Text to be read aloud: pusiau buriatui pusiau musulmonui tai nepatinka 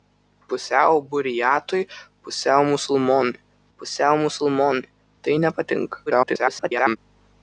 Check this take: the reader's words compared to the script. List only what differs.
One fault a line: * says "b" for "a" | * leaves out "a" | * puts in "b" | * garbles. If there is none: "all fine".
* puts in "pusiau musulmonui"
* garbles